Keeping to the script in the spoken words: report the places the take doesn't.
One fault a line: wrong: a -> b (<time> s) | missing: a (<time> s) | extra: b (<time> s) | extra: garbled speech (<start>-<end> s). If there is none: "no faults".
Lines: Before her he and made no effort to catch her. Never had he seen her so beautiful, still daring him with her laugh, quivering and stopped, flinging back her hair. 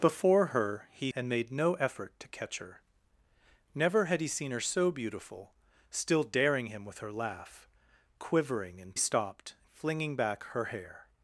no faults